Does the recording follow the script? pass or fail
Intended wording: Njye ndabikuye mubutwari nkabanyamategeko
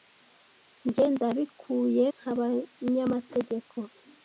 fail